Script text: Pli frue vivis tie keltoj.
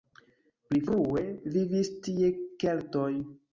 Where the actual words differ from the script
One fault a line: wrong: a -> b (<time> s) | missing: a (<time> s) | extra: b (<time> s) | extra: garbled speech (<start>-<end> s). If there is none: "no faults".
no faults